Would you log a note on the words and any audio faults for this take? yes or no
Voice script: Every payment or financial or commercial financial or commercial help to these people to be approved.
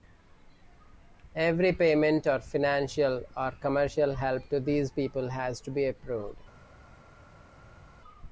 yes